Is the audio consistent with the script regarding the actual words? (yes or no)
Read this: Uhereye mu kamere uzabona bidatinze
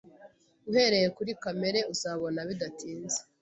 no